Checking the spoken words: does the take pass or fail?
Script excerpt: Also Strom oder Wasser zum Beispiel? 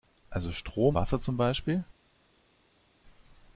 fail